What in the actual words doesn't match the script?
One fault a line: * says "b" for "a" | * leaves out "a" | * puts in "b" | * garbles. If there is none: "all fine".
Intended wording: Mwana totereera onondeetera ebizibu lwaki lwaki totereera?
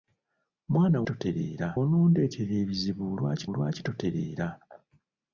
all fine